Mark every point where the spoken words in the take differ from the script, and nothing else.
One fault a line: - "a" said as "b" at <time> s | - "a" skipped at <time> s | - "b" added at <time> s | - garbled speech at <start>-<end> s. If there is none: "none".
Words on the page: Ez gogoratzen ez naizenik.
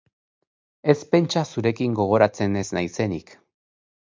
- "pentsa zurekin" added at 1.1 s